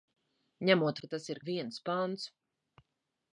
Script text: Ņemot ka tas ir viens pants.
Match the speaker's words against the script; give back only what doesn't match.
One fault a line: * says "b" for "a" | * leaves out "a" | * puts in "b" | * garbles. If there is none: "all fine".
all fine